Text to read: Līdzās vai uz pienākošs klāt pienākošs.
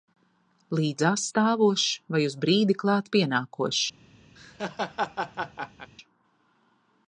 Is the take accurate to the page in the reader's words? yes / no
no